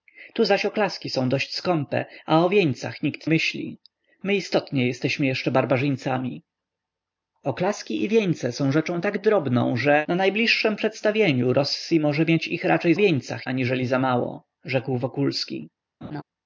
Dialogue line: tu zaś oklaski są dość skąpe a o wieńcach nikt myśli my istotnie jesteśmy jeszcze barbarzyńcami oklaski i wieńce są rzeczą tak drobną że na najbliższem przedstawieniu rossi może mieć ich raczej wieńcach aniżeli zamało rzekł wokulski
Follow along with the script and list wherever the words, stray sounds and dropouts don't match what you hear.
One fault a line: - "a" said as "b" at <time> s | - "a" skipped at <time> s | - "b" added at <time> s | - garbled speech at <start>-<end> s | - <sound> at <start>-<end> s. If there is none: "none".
- laugh at 16.0-16.2 s